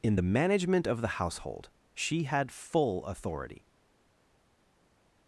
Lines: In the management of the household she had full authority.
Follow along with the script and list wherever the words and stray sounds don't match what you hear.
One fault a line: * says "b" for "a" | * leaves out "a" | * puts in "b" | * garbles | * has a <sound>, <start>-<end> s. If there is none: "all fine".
all fine